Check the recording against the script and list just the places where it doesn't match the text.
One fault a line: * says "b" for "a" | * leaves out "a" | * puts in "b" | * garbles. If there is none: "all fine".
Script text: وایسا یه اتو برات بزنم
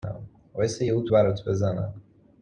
all fine